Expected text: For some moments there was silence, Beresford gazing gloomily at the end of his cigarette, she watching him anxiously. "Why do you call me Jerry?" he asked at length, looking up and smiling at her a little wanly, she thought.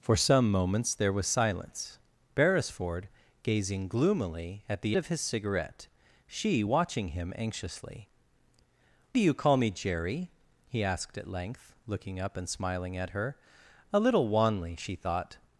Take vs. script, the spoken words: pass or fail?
fail